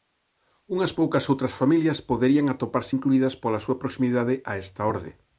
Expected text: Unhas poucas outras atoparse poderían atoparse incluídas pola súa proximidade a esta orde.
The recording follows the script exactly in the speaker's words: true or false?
false